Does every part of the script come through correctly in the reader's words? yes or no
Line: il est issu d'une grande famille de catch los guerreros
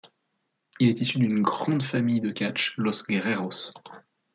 yes